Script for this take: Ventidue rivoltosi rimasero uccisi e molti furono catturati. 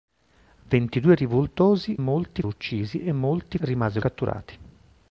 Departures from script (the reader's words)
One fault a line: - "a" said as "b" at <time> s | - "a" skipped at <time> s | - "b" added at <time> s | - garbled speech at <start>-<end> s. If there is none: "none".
- "rimasero" said as "molti" at 2.0 s
- "furono" said as "rimasero" at 3.6 s